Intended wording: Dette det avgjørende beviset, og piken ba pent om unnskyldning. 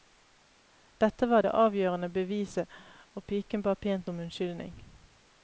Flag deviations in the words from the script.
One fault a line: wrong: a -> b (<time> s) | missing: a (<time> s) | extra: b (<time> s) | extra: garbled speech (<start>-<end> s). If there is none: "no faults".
extra: var (1.3 s)